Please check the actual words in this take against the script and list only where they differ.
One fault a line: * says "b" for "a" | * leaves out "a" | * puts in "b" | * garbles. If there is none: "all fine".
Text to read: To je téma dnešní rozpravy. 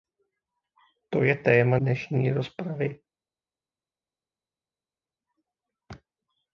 all fine